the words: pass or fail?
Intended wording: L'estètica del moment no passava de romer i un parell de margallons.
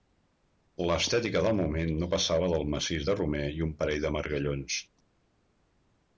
fail